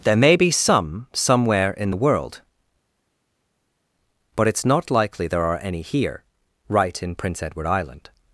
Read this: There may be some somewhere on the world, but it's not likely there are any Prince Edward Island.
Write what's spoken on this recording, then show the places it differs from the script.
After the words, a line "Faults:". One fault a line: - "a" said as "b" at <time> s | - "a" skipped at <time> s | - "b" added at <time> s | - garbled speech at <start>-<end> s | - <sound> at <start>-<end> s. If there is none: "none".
There may be some somewhere in the world, but it's not likely there are any here right in Prince Edward Island.
Faults:
- "on" said as "in" at 1.7 s
- "here right in" added at 5.8 s